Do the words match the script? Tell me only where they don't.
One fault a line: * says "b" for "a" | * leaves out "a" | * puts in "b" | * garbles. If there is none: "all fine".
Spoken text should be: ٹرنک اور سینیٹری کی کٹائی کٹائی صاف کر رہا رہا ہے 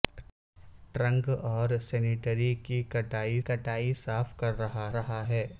all fine